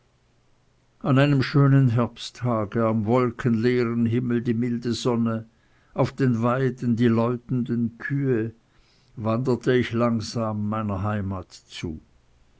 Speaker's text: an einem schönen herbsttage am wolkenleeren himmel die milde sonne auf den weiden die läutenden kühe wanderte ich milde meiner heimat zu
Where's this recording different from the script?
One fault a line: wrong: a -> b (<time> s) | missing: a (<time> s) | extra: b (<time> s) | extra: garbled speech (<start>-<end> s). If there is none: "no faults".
wrong: milde -> langsam (9.9 s)